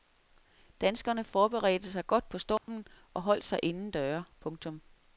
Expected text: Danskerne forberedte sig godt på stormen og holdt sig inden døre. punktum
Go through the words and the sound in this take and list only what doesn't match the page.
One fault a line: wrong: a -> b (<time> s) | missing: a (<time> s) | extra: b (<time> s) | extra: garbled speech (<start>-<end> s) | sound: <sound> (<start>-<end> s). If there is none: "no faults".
sound: dropout (2.6-2.7 s)